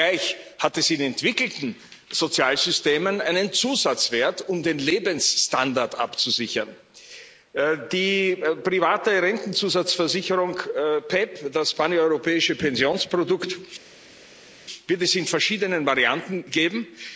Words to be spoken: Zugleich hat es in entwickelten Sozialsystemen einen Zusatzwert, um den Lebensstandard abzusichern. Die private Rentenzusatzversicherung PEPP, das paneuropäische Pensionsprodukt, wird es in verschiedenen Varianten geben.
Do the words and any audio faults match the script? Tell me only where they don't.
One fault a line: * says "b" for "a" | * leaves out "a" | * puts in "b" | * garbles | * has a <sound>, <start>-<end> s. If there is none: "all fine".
all fine